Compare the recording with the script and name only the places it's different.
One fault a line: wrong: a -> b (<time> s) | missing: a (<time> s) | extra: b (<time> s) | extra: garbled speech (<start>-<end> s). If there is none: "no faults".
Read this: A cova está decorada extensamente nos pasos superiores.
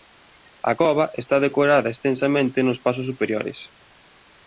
no faults